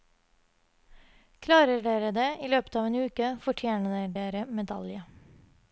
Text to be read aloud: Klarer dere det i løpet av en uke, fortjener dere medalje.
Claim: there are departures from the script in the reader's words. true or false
false